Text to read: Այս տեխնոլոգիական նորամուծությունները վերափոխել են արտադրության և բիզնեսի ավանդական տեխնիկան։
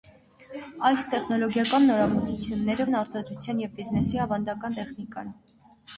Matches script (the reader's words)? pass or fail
fail